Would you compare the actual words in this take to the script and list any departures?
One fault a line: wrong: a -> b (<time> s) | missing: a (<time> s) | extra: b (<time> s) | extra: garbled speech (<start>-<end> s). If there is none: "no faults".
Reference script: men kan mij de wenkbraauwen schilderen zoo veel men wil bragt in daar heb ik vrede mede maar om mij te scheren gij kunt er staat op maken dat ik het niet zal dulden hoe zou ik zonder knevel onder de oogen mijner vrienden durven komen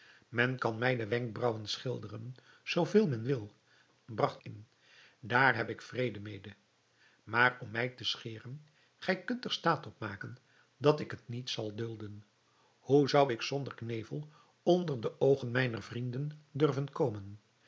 no faults